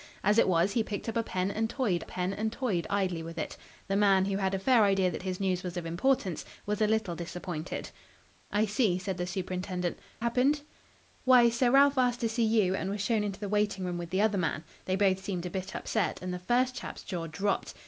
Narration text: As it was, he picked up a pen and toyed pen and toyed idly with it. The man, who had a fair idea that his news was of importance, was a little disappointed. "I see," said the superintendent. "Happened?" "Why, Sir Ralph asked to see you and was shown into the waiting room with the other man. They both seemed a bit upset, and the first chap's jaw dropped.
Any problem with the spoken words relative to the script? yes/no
no